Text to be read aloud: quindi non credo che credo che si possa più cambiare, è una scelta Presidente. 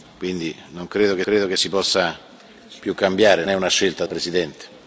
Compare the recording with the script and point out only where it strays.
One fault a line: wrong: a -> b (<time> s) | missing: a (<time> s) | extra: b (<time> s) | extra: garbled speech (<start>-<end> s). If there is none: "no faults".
no faults